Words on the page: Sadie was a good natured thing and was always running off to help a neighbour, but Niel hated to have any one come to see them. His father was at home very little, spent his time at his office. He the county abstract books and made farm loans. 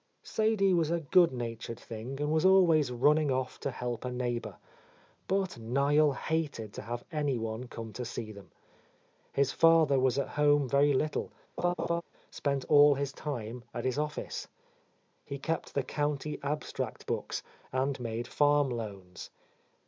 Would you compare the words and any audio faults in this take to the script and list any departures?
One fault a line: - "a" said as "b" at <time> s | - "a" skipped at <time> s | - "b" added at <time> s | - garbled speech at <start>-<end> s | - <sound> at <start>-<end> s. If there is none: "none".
- laugh at 11.6-12.0 s
- "all" added at 12.7 s
- "kept" added at 15.4 s